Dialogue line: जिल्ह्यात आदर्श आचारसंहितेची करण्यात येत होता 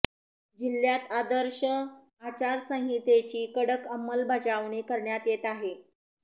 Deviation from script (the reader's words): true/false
true